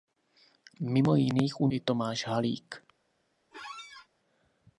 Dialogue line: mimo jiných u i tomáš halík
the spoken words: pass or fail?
pass